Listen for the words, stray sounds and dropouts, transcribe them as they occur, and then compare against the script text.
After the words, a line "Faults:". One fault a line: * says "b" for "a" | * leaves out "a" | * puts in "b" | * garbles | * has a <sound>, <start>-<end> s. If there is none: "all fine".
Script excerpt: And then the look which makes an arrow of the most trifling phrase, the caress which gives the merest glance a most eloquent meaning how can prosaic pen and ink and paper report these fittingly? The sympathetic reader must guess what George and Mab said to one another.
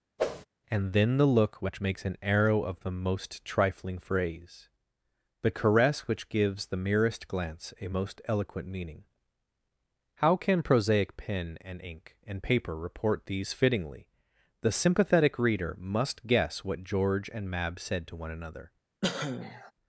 And then the look which makes an arrow of the most trifling phrase, the caress which gives the merest glance a most eloquent meaning how can prosaic pen and ink and paper report these fittingly? The sympathetic reader must guess what George and Mab said to one another.
Faults:
* has a whoosh, 0.2-0.5 s
* has a cough, 19.0-19.7 s